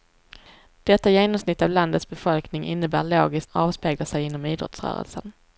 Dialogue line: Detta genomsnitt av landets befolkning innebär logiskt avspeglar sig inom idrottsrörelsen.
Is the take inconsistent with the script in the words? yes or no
no